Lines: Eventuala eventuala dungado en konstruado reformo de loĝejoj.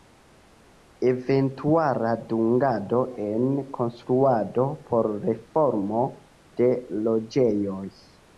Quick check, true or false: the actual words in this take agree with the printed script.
false